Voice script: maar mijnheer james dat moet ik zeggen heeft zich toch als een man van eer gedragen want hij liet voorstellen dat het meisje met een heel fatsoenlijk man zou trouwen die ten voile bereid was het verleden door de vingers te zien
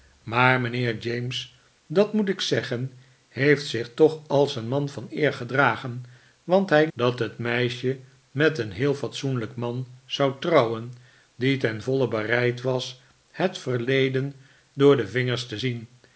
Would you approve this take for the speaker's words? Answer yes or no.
no